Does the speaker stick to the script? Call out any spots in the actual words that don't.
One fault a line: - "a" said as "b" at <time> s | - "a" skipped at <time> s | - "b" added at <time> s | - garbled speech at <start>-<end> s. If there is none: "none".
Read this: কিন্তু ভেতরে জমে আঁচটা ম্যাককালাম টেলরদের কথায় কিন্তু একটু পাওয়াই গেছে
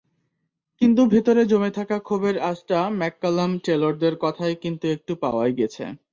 - "থাকা ক্ষোভের" added at 1.8 s